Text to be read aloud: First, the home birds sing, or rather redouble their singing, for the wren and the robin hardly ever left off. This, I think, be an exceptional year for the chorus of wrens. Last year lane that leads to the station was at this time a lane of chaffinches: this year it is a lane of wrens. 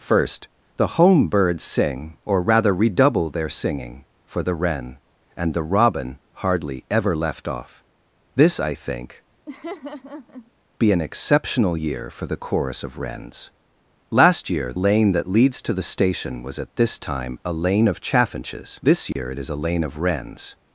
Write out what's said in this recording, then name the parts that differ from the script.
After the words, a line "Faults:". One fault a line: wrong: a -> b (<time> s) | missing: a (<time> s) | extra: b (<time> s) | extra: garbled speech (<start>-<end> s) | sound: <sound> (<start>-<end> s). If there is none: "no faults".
First, the home birds sing, or rather redouble their singing, for the wren and the robin hardly ever left off. This, I think, be an exceptional year for the chorus of wrens. Last year lane that leads to the station was at this time a lane of chaffinches: this year it is a lane of wrens.
Faults:
sound: laugh (9.5-10.5 s)
sound: dropout (19.1-19.2 s)